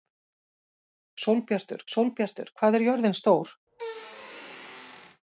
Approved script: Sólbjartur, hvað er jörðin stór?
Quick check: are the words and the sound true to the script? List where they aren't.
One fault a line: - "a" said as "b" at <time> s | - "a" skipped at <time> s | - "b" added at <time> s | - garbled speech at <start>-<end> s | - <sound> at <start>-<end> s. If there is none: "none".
- "sólbjartur" added at 1.9 s
- squeak at 3.7-5.2 s